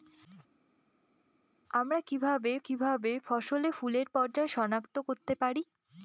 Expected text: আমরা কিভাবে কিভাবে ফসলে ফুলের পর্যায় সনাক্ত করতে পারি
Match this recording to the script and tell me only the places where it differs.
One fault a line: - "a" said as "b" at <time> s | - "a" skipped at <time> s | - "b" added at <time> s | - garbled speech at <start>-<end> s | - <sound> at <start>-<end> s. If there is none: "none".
none